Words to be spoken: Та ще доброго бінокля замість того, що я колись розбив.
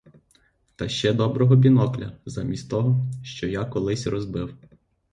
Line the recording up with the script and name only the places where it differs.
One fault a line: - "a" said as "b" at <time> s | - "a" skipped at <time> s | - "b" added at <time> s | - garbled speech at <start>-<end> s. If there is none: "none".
none